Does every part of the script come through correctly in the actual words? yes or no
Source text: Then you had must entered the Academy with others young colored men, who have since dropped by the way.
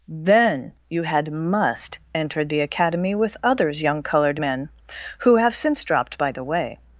yes